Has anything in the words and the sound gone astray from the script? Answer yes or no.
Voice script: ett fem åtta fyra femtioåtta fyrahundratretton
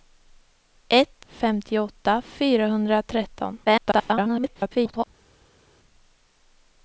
yes